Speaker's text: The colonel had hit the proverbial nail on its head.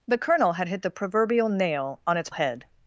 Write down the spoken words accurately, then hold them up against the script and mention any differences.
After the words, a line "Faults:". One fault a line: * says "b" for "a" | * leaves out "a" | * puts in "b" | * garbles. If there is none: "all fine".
The colonel had hit the proverbial nail on its head.
Faults:
all fine